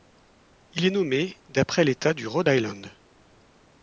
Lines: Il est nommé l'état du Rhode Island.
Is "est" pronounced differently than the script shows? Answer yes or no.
no